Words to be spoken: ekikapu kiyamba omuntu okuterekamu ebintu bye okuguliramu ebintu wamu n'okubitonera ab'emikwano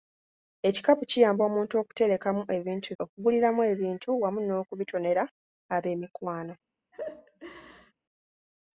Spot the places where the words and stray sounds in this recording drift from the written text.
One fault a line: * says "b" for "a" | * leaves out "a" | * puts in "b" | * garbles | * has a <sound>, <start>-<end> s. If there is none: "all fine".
* leaves out "bye"
* has a laugh, 6.9-7.9 s